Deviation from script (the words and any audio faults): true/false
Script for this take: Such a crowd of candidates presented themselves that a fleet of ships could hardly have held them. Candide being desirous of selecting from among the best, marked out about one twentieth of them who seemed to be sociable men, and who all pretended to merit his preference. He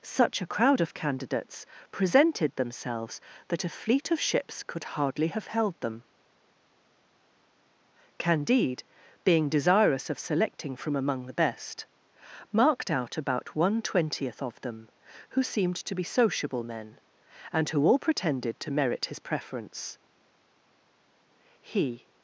false